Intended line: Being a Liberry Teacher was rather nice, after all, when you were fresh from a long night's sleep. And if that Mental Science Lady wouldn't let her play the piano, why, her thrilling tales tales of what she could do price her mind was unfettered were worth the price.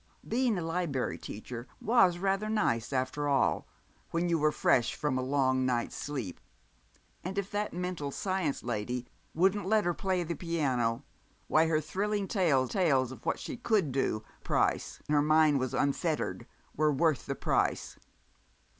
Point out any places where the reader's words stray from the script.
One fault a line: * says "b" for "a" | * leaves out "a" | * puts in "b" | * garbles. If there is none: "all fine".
all fine